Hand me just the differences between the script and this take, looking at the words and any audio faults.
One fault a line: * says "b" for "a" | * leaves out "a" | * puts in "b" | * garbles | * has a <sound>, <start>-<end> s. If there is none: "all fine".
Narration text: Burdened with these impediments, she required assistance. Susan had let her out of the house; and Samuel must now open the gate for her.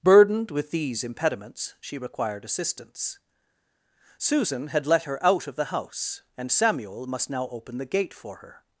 all fine